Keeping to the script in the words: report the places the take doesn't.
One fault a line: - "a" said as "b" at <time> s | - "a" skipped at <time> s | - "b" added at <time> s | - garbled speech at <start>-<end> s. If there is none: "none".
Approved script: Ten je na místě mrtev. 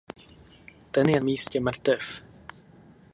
- "na" skipped at 1.2 s